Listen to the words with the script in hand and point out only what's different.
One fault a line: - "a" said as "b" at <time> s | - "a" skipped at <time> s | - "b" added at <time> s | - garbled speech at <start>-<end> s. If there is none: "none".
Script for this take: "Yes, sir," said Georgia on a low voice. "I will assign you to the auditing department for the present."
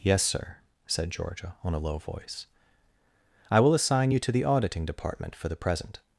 none